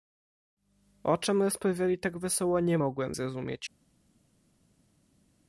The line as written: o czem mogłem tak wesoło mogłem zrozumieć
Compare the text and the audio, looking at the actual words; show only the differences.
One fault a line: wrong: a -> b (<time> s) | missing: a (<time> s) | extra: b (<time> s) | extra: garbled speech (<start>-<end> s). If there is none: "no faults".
wrong: mogłem -> rozprawiali (1.4 s)
extra: nie (2.6 s)